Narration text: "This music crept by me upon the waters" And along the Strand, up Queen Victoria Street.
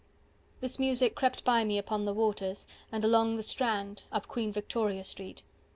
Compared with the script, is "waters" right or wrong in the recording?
right